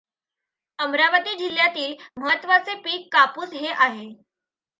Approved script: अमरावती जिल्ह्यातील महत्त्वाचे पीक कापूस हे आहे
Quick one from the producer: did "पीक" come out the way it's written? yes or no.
yes